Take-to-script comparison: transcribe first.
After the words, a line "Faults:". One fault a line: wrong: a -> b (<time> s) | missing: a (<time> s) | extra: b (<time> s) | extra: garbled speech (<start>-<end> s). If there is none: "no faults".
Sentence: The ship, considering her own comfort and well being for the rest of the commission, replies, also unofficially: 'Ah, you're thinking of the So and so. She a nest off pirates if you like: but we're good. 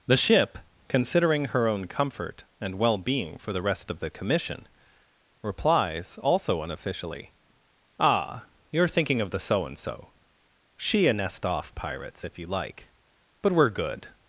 The ship, considering her own comfort and well being for the rest of the commission, replies, also unofficially: 'Ah, you're thinking of the So and so. She a nest off pirates if you like: but we're good.
Faults:
no faults